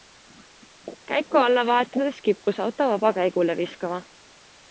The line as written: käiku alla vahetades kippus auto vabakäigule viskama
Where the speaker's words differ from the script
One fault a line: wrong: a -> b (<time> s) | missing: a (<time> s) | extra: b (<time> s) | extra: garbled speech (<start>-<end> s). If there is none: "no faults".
no faults